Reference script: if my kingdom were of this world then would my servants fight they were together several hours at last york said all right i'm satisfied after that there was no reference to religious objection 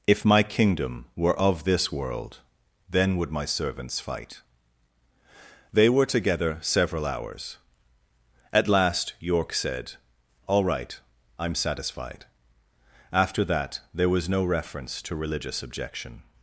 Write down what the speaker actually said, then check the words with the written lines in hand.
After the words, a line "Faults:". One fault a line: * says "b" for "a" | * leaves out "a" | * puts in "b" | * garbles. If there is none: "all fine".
if my kingdom were of this world then would my servants fight they were together several hours at last york said all right i'm satisfied after that there was no reference to religious objection
Faults:
all fine